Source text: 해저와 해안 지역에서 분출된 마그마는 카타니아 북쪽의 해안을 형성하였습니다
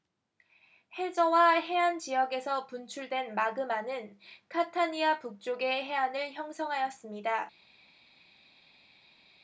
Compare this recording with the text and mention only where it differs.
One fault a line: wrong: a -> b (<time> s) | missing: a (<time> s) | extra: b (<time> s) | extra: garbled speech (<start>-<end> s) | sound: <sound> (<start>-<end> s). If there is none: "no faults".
no faults